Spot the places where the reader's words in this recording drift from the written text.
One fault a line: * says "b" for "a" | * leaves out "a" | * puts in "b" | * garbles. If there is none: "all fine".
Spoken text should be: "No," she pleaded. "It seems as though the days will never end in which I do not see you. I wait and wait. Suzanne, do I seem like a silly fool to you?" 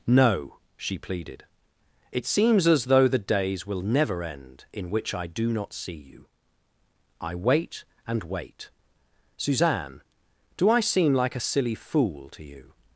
all fine